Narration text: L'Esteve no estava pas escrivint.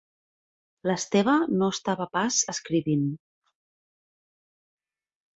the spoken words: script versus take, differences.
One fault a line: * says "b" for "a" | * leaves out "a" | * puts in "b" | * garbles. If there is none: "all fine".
all fine